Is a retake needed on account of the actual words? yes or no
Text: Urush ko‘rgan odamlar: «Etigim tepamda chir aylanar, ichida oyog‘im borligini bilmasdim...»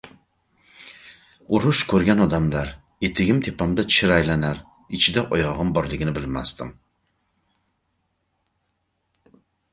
no